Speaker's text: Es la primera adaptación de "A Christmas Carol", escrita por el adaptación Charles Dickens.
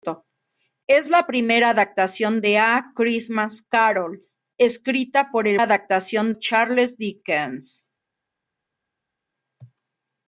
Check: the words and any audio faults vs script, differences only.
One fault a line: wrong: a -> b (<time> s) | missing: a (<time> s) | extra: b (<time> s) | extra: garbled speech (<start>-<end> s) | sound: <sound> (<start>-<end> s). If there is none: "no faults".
no faults